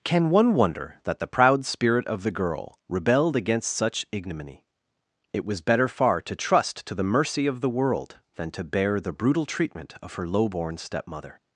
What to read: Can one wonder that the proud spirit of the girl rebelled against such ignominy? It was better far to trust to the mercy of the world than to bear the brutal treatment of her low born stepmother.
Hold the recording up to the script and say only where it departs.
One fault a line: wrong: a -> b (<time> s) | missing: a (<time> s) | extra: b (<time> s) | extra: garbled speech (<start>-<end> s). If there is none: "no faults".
no faults